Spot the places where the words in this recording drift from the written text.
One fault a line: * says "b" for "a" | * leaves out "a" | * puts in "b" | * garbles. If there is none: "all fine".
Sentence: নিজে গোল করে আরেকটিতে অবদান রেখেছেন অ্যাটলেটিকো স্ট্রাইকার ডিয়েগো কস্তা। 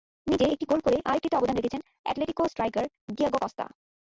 * puts in "একটি"